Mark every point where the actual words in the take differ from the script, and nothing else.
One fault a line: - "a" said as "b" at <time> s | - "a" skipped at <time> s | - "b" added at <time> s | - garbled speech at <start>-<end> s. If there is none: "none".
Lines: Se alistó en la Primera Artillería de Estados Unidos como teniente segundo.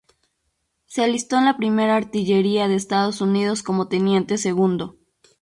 none